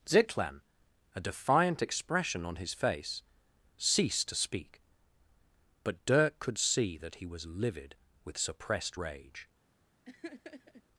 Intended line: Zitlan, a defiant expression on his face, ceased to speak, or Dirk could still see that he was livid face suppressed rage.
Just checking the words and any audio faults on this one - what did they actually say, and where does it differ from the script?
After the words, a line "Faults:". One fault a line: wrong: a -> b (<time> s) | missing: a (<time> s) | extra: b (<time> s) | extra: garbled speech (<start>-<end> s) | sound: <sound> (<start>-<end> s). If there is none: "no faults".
Zitlan, a defiant expression on his face, ceased to speak, but Dirk could see that he was livid with suppressed rage.
Faults:
wrong: or -> but (5.8 s)
missing: still (6.6 s)
wrong: face -> with (8.2 s)
sound: laugh (10.0-10.8 s)